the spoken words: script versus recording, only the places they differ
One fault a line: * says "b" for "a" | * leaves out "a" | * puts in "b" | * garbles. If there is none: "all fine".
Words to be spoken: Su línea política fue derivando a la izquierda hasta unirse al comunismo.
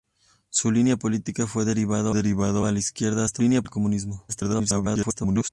* puts in "derivando"
* says "línea" for "unirse"
* garbles